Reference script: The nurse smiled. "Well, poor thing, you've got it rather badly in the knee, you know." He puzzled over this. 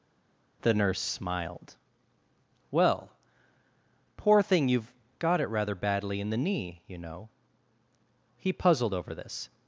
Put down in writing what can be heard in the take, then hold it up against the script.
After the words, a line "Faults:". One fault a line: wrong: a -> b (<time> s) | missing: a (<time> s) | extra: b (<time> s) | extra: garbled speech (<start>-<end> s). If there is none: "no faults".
The nurse smiled. "Well, poor thing, you've got it rather badly in the knee, you know." He puzzled over this.
Faults:
no faults